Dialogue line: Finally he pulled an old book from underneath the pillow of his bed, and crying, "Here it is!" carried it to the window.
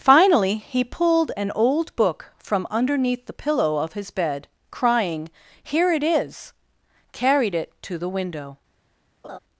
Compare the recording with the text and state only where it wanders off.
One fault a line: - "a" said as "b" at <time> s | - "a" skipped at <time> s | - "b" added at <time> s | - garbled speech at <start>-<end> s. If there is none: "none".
- "and" skipped at 4.5 s